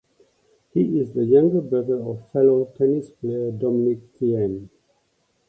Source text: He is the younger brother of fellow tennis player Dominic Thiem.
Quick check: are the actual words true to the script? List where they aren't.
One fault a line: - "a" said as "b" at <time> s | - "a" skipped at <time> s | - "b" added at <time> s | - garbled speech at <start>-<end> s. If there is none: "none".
none